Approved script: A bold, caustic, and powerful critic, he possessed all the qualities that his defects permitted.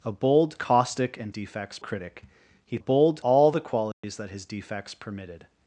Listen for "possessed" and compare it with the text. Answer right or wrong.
wrong